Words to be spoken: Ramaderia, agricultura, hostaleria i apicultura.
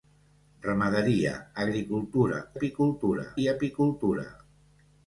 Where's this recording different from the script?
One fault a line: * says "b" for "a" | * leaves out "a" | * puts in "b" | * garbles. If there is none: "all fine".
* says "apicultura" for "hostaleria"